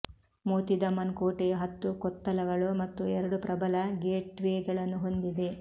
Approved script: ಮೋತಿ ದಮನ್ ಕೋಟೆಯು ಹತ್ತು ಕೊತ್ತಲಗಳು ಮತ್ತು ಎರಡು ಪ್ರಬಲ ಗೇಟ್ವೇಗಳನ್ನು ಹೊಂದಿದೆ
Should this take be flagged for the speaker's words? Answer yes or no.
no